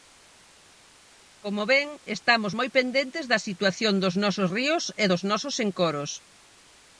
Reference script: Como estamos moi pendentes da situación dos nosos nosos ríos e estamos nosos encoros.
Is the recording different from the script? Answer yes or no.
yes